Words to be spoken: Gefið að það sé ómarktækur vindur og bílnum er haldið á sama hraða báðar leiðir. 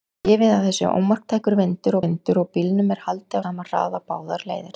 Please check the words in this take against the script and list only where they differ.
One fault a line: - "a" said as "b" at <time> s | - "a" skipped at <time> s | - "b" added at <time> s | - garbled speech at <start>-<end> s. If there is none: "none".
- "vindur" added at 2.0 s
- "á" skipped at 3.4 s